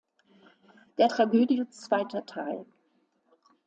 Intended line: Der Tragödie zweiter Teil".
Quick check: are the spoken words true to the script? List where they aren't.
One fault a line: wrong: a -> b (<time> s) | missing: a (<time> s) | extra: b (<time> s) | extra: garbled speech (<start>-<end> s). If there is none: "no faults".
no faults